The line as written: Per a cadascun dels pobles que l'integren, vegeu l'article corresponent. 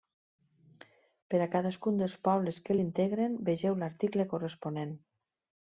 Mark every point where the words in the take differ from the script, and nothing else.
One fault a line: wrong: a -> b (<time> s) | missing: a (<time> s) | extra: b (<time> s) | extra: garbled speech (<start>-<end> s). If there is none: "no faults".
no faults